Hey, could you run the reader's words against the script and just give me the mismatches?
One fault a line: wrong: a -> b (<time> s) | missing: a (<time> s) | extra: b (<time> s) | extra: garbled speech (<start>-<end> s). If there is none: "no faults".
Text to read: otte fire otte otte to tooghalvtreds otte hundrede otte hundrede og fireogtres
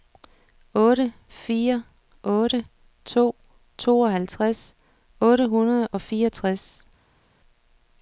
missing: otte (2.6 s)
missing: otte hundrede (5.9 s)